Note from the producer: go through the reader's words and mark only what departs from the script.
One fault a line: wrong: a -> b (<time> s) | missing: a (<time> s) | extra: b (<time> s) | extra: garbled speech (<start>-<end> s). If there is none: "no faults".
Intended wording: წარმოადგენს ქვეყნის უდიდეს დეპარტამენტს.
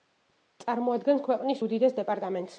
no faults